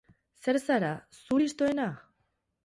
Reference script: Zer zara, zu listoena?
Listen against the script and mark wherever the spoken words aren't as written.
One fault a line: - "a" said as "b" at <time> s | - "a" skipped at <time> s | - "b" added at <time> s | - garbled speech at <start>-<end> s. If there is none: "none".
none